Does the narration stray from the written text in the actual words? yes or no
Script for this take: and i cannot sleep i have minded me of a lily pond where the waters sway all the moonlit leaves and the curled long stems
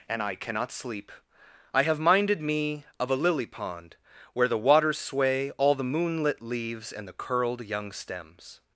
yes